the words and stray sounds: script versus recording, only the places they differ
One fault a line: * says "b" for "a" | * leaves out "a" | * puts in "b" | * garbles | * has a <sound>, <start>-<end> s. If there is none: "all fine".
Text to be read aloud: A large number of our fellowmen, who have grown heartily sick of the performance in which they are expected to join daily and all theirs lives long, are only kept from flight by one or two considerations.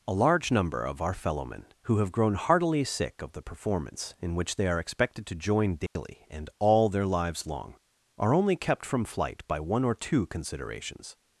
* has a dropout, 5.9-6.0 s
* says "their" for "theirs"